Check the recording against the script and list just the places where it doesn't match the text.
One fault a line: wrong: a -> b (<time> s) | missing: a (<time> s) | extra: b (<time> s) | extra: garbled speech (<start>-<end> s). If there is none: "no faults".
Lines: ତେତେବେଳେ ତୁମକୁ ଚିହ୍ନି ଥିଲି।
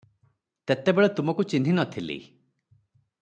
extra: ନ (1.7 s)